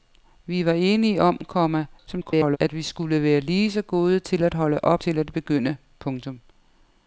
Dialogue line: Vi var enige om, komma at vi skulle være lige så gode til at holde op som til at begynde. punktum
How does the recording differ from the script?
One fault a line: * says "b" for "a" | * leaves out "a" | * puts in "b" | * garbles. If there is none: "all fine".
* garbles
* leaves out "som"